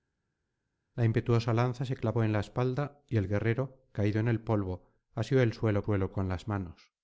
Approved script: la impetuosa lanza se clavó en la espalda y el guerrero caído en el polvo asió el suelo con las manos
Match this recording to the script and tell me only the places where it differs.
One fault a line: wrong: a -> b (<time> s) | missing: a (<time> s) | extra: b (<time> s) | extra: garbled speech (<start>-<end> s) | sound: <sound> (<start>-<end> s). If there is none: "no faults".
extra: suelo (5.8 s)